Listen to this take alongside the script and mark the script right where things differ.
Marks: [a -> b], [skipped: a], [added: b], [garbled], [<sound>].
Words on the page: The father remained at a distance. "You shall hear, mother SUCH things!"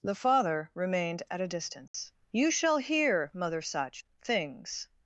The father remained at a distance. [dropout] "You shall hear, mother SUCH things!"